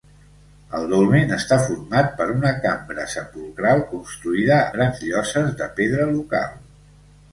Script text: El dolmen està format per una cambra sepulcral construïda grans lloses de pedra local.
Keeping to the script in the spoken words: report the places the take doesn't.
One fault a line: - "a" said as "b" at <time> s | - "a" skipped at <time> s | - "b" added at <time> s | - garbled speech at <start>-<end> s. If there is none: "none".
none